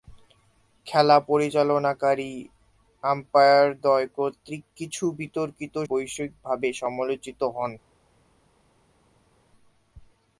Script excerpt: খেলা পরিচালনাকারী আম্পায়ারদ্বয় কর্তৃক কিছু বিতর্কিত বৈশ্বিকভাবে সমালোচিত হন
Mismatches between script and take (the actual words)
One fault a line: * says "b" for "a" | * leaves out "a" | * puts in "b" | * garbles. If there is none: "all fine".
all fine